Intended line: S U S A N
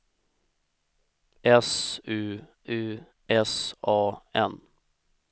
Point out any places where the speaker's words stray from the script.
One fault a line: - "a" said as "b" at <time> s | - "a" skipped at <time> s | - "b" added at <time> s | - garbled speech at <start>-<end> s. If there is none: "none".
- "U" added at 2.7 s